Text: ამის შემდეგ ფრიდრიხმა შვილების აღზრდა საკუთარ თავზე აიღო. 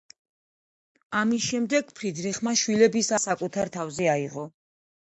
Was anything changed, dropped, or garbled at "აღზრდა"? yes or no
yes